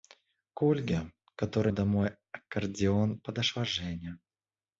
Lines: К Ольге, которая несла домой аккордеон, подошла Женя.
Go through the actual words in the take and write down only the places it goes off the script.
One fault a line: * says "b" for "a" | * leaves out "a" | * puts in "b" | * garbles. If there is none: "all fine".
* leaves out "несла"